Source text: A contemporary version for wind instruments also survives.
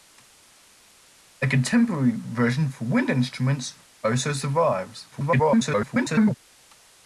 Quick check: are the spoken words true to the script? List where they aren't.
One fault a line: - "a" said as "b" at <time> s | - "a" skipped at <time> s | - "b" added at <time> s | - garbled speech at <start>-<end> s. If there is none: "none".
- garbled speech at 5.1-6.4 s